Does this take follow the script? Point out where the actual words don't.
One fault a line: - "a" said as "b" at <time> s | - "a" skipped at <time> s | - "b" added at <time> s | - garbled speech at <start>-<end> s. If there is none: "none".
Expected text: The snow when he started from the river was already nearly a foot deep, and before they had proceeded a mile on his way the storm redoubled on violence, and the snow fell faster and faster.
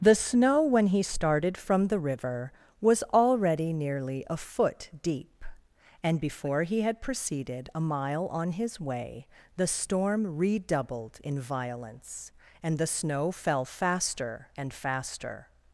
- "they" said as "he" at 6.6 s
- "on" said as "in" at 11.2 s